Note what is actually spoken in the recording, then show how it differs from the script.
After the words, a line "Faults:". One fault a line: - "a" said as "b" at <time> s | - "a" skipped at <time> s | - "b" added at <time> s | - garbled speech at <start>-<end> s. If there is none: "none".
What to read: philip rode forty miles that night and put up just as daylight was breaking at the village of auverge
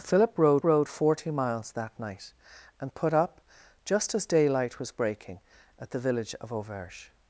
philip rode rode forty miles that night and put up just as daylight was breaking at the village of auverge
Faults:
- "rode" added at 0.6 s